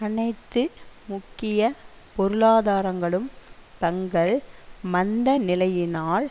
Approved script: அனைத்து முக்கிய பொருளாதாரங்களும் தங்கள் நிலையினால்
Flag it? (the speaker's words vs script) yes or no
yes